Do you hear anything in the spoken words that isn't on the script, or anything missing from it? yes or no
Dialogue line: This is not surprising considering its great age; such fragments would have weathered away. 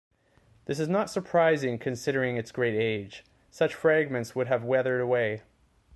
no